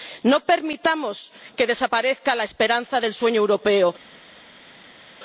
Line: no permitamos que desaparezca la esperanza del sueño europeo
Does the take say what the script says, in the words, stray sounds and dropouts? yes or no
yes